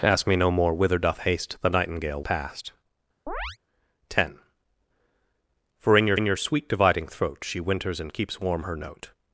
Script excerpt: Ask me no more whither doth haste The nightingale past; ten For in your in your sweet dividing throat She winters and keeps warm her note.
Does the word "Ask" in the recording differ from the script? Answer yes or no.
no